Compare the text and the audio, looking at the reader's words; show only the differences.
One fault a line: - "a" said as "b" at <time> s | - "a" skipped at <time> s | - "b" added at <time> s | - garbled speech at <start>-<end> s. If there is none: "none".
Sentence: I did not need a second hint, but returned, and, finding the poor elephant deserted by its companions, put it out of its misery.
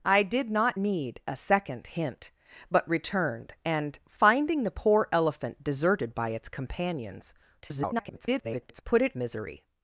- garbled speech at 7.6-8.8 s
- "out of its" skipped at 9.1 s